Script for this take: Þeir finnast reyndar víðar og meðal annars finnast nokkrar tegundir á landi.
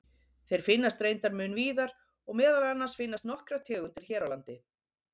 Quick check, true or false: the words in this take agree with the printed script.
false